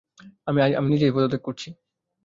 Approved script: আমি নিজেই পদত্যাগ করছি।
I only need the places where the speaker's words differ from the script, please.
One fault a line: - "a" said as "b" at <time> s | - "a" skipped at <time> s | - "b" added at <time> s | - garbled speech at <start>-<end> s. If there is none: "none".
none